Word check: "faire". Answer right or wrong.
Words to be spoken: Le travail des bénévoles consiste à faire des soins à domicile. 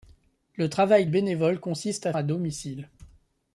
wrong